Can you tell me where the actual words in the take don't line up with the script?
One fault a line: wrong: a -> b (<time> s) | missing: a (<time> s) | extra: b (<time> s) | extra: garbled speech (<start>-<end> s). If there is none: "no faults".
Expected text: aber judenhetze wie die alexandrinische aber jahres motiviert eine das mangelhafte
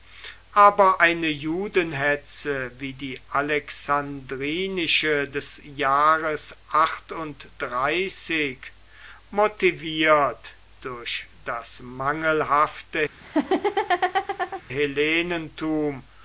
extra: eine (1.0 s)
wrong: aber -> des (5.3 s)
wrong: eine -> durch (10.8 s)